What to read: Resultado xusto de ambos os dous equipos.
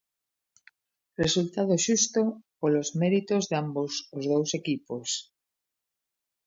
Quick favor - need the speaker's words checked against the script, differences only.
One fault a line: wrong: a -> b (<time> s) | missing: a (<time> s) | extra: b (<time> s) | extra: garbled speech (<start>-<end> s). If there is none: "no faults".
extra: polos méritos (2.6 s)